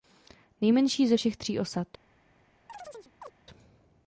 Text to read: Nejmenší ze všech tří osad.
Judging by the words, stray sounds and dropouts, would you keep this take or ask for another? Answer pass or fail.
fail